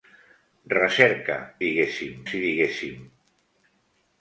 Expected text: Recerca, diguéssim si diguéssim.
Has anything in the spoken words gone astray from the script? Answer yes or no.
no